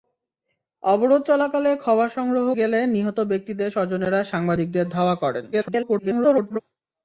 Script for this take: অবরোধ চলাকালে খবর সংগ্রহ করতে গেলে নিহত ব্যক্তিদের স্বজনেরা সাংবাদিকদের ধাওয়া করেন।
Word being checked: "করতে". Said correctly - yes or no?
no